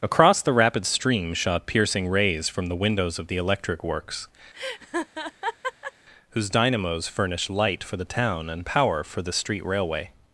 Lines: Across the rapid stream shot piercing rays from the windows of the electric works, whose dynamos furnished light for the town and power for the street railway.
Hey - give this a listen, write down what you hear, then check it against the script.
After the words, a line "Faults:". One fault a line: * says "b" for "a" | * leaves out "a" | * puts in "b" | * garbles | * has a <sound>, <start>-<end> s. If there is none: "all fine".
Across the rapid stream shot piercing rays from the windows of the electric works, whose dynamos furnished light for the town and power for the street railway.
Faults:
* has a laugh, 4.5-5.9 s